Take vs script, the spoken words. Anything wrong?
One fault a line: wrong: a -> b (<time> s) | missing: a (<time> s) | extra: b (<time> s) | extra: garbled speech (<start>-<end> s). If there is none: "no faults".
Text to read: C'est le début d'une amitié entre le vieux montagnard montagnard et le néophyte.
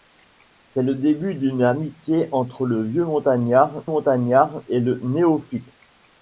no faults